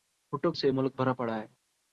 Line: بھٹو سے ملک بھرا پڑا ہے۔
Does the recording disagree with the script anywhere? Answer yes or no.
no